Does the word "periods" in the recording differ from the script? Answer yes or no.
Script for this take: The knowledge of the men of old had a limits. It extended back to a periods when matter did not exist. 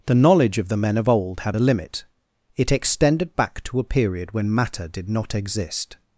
yes